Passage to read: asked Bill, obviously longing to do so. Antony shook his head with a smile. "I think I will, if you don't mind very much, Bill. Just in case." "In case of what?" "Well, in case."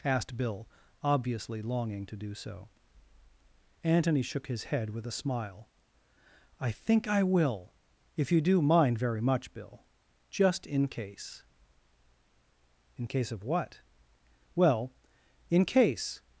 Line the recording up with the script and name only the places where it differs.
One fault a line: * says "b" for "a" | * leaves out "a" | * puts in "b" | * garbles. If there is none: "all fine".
* says "do" for "don't"